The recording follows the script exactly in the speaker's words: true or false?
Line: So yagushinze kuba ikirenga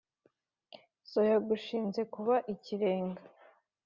true